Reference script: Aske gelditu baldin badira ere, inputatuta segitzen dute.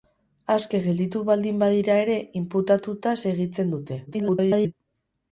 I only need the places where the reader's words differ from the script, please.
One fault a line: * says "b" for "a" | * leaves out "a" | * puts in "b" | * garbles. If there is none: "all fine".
* garbles